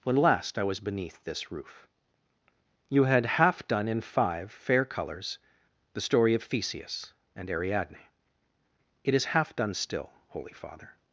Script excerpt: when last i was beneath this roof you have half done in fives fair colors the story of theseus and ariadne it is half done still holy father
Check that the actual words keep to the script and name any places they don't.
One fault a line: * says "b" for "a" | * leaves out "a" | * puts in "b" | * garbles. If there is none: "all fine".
* says "had" for "have"
* says "five" for "fives"